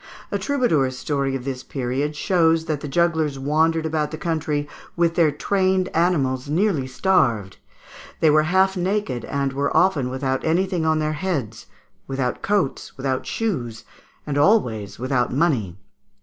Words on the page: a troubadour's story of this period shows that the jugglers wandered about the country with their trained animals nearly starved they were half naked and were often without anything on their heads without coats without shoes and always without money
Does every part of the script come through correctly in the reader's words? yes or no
yes